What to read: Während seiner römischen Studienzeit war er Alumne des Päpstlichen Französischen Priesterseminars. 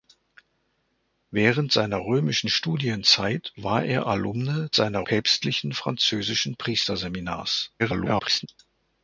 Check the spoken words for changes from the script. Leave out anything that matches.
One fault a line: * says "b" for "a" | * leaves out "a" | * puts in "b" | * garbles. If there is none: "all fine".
* says "seiner" for "des"
* garbles